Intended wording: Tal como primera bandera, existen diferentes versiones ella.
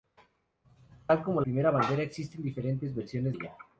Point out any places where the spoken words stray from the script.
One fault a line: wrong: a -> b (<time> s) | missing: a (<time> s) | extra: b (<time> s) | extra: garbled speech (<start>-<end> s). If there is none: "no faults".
no faults